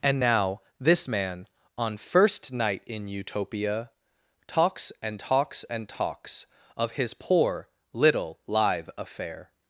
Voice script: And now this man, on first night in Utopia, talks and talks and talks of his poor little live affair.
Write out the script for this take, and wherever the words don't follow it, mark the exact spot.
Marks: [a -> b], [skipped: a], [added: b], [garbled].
And now this man, on first night in Utopia, talks and talks and talks of his poor little live affair.